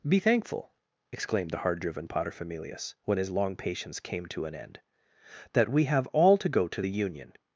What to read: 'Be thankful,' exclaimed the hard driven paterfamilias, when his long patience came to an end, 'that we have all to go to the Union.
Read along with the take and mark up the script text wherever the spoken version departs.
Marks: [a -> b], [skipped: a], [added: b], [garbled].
'Be thankful,' exclaimed the hard driven paterfamilias, when his long patience came to an end, 'that we have all to go to the Union.